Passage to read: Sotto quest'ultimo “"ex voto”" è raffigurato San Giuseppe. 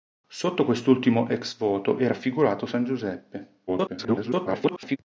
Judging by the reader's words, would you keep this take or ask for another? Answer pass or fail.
fail